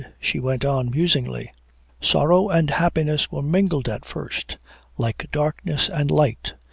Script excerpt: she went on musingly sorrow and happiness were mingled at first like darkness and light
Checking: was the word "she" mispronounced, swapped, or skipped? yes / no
no